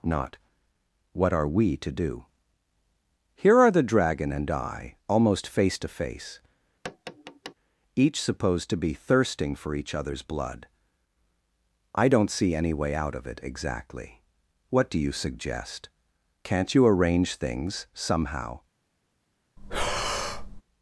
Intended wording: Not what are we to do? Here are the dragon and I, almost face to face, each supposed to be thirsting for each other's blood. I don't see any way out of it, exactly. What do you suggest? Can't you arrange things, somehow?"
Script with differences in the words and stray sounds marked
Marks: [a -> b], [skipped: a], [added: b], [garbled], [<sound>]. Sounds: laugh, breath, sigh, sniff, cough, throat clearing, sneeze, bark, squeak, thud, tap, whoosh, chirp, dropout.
Not what are we to do? Here are the dragon and I, almost face to face, [tap] each supposed to be thirsting for each other's blood. I don't see any way out of it, exactly. What do you suggest? Can't you arrange things, somehow?" [breath]